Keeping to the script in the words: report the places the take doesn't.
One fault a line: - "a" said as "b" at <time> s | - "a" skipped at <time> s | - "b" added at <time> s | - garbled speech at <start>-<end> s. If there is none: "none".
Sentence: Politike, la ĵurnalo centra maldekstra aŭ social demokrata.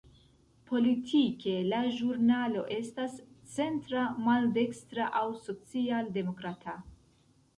- "estas" added at 2.8 s